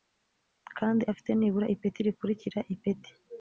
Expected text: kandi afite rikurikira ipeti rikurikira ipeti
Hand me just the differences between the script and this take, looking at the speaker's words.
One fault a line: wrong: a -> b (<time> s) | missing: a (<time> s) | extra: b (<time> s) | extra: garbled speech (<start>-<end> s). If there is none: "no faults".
wrong: rikurikira -> nibura (1.3 s)